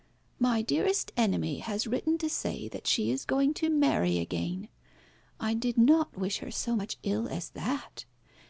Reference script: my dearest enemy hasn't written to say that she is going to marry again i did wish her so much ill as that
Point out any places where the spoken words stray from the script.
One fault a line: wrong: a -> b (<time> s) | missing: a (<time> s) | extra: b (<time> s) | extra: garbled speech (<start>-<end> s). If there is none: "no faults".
wrong: hasn't -> has (1.6 s)
extra: not (5.8 s)